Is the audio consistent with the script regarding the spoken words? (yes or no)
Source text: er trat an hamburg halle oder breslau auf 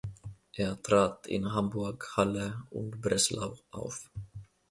no